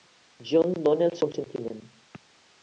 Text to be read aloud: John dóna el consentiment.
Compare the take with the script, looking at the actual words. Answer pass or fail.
pass